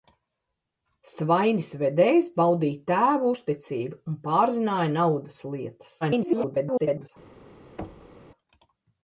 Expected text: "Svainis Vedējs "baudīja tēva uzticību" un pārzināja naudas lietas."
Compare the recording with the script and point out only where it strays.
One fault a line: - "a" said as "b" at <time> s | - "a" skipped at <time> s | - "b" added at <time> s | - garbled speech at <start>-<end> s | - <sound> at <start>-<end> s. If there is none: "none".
- garbled speech at 6.0-7.1 s
- thud at 7.8-8.2 s